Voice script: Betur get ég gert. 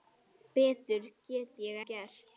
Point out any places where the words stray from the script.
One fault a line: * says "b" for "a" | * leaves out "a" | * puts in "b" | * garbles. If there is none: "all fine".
all fine